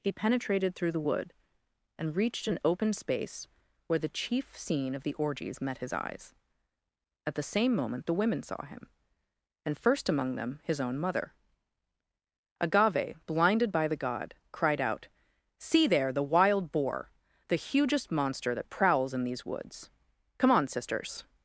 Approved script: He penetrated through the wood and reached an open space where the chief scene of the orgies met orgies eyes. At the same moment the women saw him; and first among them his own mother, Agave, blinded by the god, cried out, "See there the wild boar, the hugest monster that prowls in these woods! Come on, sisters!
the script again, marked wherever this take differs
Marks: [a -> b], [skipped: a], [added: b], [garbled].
He penetrated through the wood and reached an open space where the chief scene of the orgies met [orgies -> his] eyes. At the same moment the women saw him; and first among them his own mother, Agave, blinded by the god, cried out, "See there the wild boar, the hugest monster that prowls in these woods! Come on, sisters!